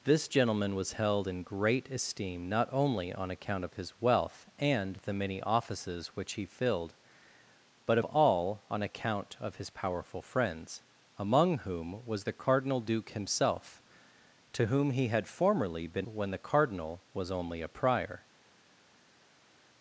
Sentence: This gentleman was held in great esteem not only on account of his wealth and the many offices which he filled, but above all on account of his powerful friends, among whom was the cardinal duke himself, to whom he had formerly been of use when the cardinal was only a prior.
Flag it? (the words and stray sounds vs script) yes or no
yes